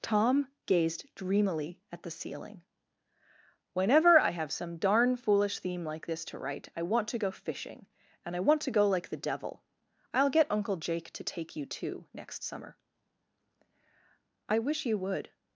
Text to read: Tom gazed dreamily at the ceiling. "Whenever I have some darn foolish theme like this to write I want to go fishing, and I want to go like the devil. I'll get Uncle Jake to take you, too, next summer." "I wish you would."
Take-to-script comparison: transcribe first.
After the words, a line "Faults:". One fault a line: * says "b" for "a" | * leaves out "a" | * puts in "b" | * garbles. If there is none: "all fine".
Tom gazed dreamily at the ceiling. "Whenever I have some darn foolish theme like this to write I want to go fishing, and I want to go like the devil. I'll get Uncle Jake to take you, too, next summer." "I wish you would."
Faults:
all fine